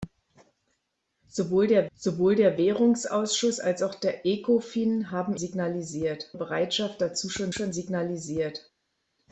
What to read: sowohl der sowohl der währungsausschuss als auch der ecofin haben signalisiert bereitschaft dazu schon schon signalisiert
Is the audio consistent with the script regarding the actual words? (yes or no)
yes